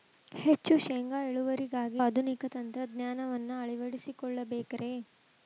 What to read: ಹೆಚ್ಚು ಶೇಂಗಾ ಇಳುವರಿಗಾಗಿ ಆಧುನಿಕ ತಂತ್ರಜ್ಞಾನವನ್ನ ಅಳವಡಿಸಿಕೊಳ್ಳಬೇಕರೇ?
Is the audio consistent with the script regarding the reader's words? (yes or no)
yes